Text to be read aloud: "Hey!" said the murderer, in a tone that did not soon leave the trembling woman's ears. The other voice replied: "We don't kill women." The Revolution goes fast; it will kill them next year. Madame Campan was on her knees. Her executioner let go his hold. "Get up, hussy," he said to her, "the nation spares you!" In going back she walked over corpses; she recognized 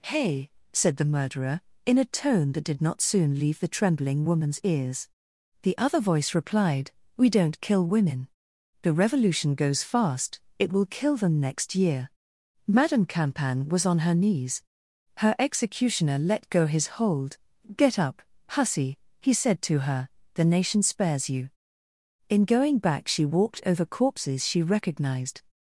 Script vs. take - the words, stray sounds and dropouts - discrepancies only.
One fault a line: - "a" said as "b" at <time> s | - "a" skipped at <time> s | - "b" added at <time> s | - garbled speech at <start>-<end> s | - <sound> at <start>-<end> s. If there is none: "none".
none